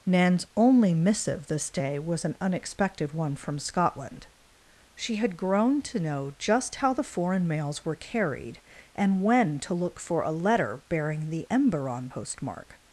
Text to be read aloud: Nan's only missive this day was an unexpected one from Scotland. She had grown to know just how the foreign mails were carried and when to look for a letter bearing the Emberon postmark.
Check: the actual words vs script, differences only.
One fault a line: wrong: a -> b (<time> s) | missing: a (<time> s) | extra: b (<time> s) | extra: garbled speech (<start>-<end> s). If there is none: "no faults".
no faults